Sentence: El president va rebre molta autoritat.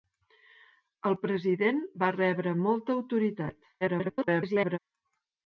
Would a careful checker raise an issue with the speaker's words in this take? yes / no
yes